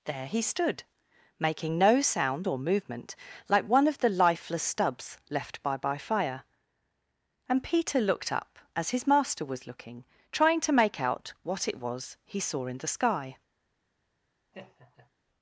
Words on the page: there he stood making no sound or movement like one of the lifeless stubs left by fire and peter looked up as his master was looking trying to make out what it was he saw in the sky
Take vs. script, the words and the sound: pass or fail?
fail